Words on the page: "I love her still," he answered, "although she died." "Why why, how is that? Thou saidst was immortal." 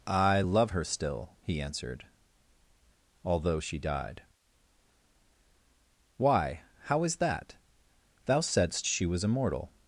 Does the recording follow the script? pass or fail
fail